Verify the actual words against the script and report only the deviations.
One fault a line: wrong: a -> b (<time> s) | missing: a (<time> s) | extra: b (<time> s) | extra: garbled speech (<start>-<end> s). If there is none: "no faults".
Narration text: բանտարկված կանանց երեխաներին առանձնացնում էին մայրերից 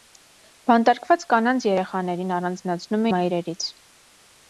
missing: էին (3.0 s)